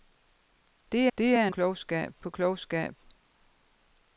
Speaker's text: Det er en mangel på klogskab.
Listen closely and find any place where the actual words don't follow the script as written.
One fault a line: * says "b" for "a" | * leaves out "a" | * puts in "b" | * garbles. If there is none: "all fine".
* puts in "det"
* says "klogskab" for "mangel"